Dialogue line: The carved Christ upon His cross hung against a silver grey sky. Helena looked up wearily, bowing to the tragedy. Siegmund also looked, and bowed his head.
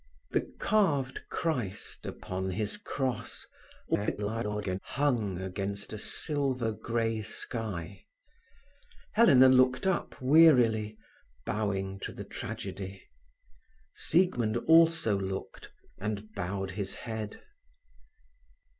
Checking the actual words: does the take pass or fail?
fail